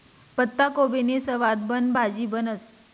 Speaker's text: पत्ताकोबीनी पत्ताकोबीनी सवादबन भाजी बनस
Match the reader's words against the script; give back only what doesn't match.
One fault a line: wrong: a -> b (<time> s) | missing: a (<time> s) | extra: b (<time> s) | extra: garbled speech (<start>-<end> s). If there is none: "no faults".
missing: पत्ताकोबीनी (1.2 s)